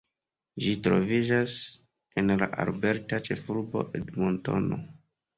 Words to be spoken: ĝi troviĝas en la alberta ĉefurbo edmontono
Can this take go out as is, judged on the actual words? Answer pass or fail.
pass